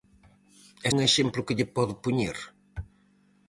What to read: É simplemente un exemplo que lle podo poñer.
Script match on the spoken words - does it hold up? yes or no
no